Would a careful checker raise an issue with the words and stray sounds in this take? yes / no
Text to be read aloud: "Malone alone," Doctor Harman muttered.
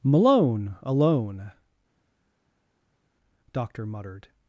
yes